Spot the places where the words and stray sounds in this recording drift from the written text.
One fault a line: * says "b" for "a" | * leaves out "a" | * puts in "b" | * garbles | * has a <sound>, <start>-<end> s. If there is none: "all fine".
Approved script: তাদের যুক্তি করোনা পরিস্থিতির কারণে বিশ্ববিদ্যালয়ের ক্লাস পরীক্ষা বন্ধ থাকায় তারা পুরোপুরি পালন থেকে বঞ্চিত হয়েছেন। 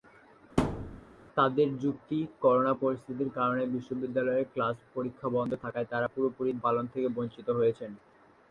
* has a thud, 0.6-1.0 s